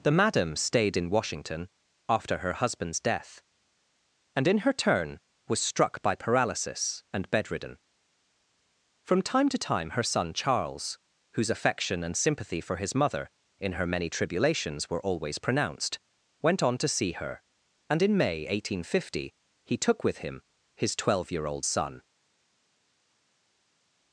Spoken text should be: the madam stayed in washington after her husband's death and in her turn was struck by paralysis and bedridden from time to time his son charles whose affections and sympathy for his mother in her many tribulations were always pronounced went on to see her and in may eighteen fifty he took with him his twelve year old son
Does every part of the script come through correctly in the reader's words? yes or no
no